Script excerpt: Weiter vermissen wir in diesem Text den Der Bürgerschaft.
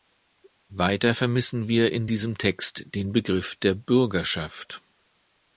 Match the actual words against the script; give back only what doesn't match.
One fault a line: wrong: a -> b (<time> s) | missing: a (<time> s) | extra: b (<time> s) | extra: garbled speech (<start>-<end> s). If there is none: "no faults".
extra: Begriff (3.1 s)